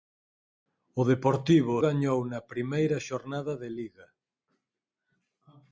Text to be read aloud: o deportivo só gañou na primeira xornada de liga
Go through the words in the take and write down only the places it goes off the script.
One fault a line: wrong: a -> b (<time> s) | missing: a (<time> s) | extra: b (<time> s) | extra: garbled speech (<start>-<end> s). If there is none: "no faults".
missing: só (1.8 s)